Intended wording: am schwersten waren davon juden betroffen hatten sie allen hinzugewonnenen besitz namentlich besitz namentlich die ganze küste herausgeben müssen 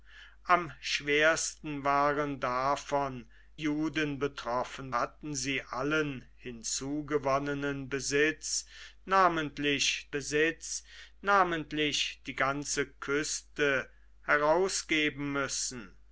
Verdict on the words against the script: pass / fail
pass